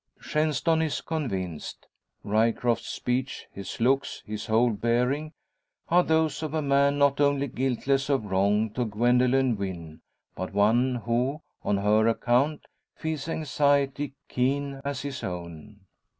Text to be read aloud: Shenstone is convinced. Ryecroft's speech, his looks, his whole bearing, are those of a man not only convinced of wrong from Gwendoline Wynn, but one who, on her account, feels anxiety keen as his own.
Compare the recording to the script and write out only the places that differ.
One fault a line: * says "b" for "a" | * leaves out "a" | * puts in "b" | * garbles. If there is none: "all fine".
* says "guiltless" for "convinced"
* says "to" for "from"